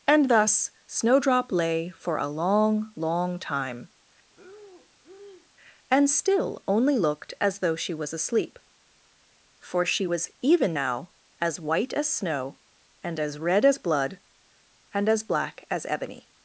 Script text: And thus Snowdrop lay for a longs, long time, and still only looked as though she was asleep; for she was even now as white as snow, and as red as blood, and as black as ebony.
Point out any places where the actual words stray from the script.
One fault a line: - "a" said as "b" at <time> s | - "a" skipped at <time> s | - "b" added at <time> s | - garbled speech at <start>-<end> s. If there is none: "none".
- "longs" said as "long" at 2.3 s